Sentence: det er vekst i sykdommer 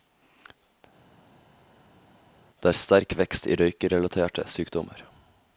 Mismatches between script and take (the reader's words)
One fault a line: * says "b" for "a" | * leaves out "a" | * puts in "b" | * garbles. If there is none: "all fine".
* puts in "sterk"
* puts in "røykerelaterte"